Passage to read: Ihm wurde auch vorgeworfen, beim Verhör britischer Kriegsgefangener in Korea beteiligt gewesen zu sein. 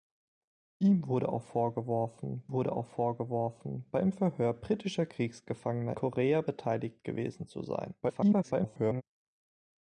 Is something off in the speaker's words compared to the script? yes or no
yes